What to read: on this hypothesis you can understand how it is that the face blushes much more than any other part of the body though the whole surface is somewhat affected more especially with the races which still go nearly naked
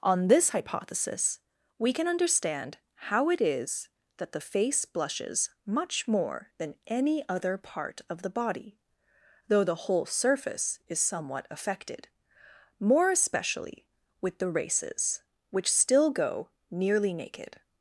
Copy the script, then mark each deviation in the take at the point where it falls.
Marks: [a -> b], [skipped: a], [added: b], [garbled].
on this hypothesis [you -> we] can understand how it is that the face blushes much more than any other part of the body though the whole surface is somewhat affected more especially with the races which still go nearly naked